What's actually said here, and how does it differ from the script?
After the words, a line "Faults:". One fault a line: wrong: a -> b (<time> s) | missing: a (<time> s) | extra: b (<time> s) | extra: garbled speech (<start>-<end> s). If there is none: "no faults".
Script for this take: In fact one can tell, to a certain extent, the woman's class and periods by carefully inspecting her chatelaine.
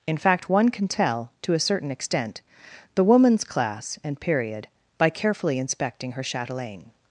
In fact one can tell, to a certain extent, the woman's class and period by carefully inspecting her chatelaine.
Faults:
wrong: periods -> period (4.2 s)